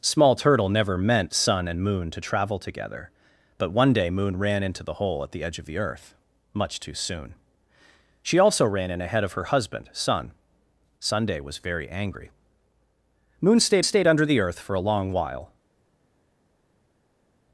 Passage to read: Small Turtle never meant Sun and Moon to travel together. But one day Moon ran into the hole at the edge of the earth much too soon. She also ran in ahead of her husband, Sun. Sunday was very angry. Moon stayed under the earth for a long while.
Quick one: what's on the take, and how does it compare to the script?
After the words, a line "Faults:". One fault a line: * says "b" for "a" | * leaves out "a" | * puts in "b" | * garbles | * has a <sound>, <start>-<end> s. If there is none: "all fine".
Small Turtle never meant Sun and Moon to travel together. But one day Moon ran into the hole at the edge of the earth much too soon. She also ran in ahead of her husband, Sun. Sunday was very angry. Moon stayed stayed under the earth for a long while.
Faults:
* puts in "stayed"